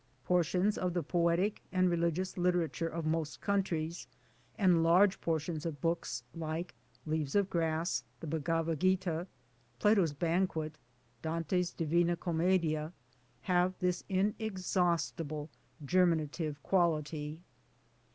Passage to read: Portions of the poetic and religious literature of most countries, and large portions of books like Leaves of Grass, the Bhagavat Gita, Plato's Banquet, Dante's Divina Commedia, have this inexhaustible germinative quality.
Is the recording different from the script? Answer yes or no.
no